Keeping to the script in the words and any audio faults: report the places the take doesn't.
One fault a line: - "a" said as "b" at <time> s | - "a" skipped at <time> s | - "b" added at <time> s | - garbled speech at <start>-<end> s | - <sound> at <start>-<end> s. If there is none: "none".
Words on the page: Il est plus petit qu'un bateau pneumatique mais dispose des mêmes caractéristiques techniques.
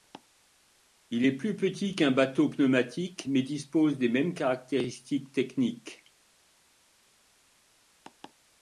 none